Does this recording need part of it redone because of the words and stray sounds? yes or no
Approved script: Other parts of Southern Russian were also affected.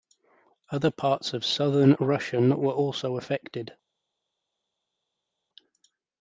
no